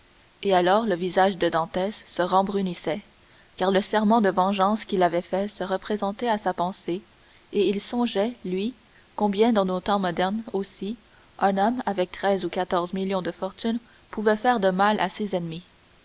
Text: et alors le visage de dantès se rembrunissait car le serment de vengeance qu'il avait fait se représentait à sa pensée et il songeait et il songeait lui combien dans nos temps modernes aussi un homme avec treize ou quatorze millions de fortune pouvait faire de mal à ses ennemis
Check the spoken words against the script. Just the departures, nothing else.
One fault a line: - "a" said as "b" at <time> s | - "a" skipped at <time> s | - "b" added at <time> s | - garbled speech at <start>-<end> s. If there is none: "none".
- "et il songeait" skipped at 8.4 s